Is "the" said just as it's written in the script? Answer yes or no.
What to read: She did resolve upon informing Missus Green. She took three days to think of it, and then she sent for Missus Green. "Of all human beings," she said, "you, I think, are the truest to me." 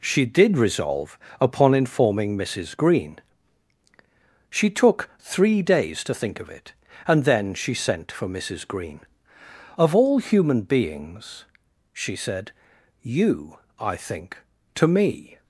no